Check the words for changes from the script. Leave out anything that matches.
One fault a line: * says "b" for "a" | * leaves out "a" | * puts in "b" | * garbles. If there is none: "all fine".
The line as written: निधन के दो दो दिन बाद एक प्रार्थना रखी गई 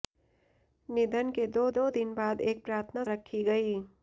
all fine